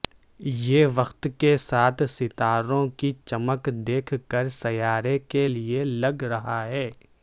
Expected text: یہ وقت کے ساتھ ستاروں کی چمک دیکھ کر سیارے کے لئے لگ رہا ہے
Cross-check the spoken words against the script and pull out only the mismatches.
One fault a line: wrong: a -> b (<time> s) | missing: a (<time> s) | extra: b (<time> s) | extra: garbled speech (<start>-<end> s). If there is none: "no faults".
no faults